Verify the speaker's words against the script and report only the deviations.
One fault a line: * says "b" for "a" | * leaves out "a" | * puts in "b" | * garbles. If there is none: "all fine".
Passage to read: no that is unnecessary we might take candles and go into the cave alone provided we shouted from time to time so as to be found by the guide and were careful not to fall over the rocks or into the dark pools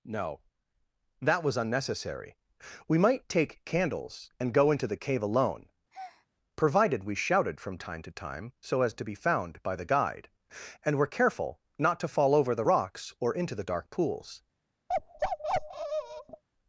* says "was" for "is"